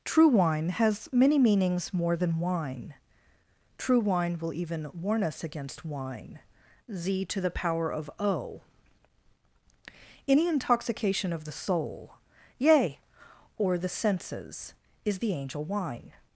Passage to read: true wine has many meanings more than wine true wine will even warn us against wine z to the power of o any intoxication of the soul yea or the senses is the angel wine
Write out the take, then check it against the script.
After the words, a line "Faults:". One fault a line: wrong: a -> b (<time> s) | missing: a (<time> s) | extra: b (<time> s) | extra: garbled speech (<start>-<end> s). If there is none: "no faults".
true wine has many meanings more than wine true wine will even warn us against wine z to the power of o any intoxication of the soul yea or the senses is the angel wine
Faults:
no faults